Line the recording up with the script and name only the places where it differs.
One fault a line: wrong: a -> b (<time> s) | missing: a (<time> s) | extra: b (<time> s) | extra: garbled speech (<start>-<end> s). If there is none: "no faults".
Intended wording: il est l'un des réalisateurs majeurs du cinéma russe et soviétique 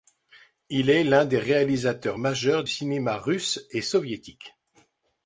missing: du (2.6 s)